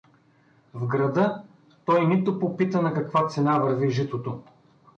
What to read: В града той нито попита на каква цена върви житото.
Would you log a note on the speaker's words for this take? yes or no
no